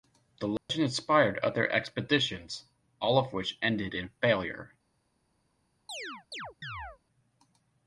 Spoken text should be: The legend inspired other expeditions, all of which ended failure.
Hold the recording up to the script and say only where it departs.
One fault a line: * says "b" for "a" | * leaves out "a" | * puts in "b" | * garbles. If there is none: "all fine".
* puts in "in"